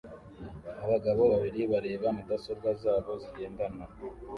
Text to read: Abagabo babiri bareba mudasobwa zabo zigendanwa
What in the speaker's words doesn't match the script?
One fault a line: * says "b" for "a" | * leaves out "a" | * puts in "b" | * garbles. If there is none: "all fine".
all fine